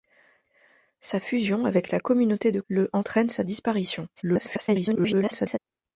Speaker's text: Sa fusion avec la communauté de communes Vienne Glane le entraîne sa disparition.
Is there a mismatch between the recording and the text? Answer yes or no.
yes